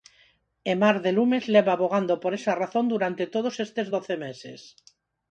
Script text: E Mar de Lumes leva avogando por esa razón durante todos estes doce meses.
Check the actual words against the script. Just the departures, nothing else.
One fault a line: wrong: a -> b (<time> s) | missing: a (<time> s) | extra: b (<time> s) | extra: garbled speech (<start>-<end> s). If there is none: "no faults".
no faults